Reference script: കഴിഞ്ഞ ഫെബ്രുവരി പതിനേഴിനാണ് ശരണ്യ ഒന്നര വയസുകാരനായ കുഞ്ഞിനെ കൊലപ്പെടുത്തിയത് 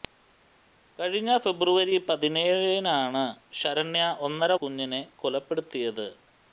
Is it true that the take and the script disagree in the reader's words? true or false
true